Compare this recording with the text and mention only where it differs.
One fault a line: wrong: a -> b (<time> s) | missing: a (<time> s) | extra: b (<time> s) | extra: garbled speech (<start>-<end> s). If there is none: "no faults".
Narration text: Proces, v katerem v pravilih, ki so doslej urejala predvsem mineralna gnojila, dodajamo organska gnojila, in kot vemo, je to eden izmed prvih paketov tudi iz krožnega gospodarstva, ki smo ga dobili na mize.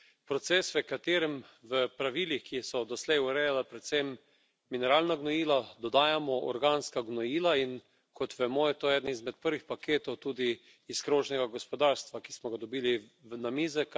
no faults